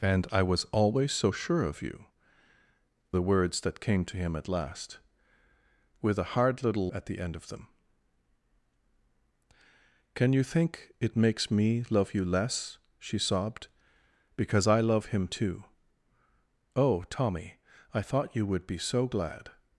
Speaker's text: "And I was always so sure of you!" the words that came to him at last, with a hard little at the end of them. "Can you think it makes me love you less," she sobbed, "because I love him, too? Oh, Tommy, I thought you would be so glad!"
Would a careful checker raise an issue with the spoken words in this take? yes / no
no